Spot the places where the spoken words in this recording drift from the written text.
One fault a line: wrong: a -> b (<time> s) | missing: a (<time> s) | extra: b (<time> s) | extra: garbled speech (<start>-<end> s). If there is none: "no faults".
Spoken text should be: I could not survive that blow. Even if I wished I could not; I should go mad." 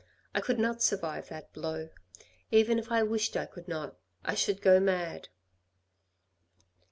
no faults